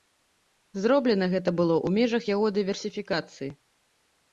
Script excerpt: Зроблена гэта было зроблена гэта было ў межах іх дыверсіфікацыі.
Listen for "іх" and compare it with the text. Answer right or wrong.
wrong